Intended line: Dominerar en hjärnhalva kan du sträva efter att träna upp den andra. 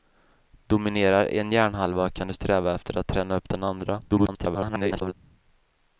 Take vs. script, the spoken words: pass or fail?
fail